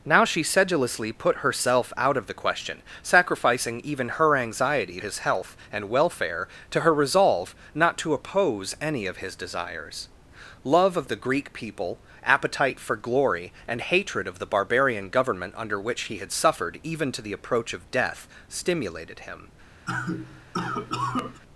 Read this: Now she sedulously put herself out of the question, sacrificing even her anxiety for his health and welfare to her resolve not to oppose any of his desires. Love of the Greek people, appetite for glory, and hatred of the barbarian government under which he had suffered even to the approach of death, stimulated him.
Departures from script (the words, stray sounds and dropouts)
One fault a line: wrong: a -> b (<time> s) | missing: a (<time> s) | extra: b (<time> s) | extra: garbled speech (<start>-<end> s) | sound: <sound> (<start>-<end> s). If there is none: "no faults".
missing: for (5.0 s)
sound: cough (19.8-21.4 s)